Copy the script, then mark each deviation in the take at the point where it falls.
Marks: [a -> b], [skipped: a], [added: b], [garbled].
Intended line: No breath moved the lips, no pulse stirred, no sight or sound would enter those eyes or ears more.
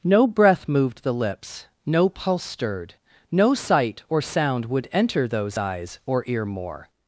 No breath moved the lips, no pulse stirred, no sight or sound would enter those eyes or [ears -> ear] more.